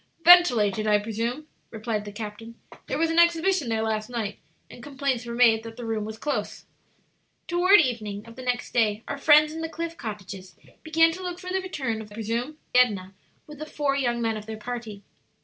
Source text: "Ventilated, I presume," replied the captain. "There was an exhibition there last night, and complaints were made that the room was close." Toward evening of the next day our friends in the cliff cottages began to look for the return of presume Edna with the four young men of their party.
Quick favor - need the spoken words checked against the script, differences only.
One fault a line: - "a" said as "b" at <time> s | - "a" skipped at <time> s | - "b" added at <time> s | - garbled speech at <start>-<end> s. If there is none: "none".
none